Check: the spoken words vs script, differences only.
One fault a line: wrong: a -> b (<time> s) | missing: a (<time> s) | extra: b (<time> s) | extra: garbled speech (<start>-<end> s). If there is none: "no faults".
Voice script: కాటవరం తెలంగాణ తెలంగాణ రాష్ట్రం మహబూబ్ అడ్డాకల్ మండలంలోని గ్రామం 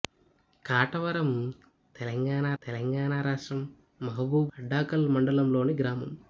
no faults